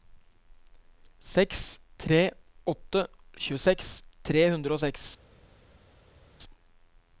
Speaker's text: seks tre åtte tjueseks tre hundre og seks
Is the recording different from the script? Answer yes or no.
no